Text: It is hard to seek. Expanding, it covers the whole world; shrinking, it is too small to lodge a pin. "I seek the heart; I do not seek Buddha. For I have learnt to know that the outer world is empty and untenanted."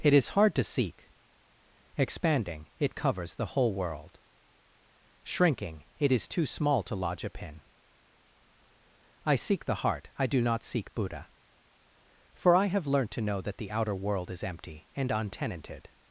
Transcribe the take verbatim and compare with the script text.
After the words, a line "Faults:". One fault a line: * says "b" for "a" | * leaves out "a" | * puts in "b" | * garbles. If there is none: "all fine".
It is hard to seek. Expanding, it covers the whole world; shrinking, it is too small to lodge a pin. "I seek the heart; I do not seek Buddha. For I have learnt to know that the outer world is empty and untenanted."
Faults:
all fine